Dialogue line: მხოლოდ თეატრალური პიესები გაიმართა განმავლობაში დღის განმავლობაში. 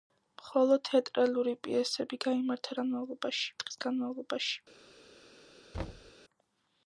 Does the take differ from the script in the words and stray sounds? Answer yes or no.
yes